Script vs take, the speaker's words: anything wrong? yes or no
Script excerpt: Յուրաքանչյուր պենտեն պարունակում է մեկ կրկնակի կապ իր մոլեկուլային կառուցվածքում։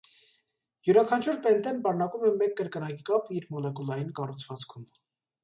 no